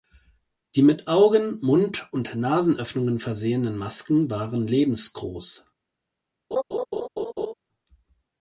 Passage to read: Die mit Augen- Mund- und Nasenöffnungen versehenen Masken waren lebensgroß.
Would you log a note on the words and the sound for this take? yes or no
yes